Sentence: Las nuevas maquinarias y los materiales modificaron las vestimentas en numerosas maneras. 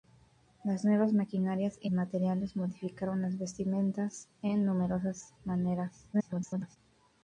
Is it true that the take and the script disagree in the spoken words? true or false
true